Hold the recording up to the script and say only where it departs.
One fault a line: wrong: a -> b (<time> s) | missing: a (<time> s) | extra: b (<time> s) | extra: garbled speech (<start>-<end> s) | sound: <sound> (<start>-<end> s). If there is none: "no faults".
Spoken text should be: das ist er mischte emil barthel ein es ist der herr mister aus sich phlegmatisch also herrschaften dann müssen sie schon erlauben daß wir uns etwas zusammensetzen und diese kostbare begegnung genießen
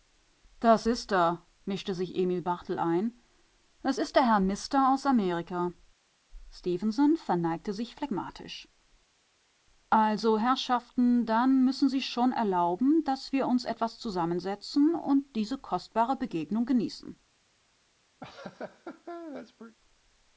extra: sich (1.9 s)
extra: amerika stefenson verneigte (5.1 s)
sound: laugh (18.2-19.8 s)